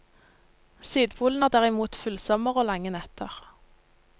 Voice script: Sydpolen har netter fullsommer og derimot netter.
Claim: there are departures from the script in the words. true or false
true